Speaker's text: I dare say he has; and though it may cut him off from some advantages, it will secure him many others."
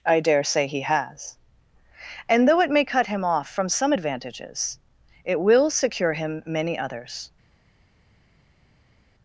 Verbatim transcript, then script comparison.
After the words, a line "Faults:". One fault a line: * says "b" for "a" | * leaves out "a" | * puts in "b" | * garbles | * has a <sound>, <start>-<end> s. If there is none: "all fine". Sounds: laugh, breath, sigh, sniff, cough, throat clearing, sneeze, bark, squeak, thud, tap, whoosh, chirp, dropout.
I dare say he has; and though it may cut him off from some advantages, it will secure him many others."
Faults:
all fine